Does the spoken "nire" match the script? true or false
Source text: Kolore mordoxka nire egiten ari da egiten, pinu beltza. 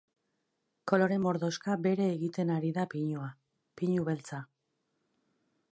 false